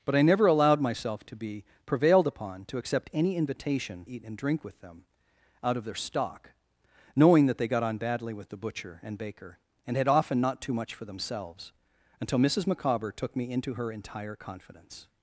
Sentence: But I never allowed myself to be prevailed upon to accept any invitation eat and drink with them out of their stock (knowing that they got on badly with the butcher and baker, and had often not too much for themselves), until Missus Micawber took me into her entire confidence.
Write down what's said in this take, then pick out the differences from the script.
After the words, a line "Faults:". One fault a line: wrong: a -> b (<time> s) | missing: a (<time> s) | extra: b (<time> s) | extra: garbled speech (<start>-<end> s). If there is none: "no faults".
But I never allowed myself to be prevailed upon to accept any invitation eat and drink with them out of their stock (knowing that they got on badly with the butcher and baker, and had often not too much for themselves), until Missus Micawber took me into her entire confidence.
Faults:
no faults